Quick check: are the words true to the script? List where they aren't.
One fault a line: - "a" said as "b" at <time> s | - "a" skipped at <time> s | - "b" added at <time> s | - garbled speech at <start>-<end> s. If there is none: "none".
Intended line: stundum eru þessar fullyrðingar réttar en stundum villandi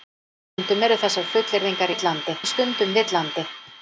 - "réttar" said as "villandi" at 1.9 s